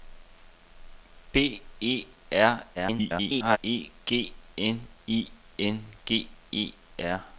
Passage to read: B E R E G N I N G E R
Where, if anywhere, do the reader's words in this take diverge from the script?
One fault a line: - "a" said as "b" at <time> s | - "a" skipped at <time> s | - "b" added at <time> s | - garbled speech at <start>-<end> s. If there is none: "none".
- garbled speech at 2.7-3.6 s